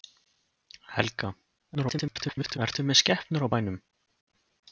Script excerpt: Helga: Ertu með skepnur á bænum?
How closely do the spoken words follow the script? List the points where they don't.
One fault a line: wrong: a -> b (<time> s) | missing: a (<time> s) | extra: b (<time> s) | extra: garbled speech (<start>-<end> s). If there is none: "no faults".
extra: garbled speech (1.7-2.6 s)